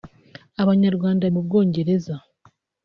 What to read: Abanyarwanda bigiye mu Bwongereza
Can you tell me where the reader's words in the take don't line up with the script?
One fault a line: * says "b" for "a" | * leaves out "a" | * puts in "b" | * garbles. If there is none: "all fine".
* leaves out "bigiye"